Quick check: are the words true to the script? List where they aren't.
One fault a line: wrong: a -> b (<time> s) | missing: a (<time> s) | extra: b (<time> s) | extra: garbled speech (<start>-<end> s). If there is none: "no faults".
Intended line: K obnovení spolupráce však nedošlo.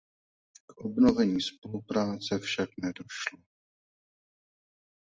no faults